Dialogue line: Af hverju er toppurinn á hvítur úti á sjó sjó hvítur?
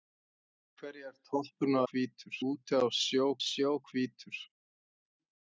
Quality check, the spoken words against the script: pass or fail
pass